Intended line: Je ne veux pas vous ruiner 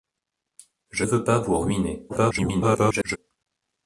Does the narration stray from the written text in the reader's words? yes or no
yes